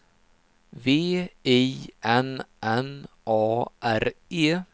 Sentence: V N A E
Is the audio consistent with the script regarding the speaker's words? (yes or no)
no